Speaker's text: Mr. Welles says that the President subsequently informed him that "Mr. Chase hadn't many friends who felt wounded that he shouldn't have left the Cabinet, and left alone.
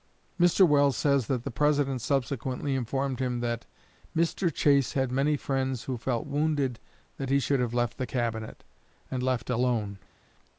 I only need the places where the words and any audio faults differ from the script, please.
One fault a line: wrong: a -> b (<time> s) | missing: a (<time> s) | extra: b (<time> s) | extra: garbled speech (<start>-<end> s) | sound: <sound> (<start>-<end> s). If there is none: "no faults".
wrong: hadn't -> had (4.9 s)
wrong: shouldn't -> should (7.4 s)